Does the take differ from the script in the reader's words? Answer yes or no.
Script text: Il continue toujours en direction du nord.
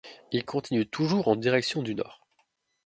no